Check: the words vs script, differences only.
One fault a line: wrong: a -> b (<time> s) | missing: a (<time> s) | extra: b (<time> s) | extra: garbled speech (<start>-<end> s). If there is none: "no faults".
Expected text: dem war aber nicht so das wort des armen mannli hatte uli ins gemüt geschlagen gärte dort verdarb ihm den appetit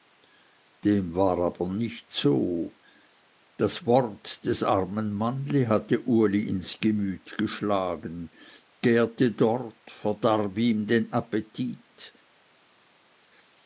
no faults